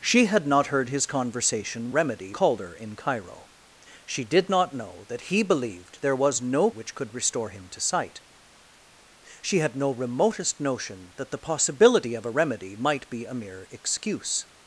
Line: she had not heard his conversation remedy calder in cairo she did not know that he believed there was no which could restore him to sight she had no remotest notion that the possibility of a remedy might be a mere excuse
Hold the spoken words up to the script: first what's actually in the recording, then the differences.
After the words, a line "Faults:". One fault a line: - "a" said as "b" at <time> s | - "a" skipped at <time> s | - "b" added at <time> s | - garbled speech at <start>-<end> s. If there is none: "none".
she had not heard his conversation remedy calder in cairo she did not know that he believed there was no which could restore him to sight she had no remotest notion that the possibility of a remedy might be a mere excuse
Faults:
none